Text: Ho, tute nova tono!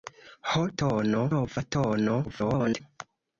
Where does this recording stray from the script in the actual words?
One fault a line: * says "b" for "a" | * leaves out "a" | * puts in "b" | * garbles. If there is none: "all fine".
* says "tono" for "tute"
* garbles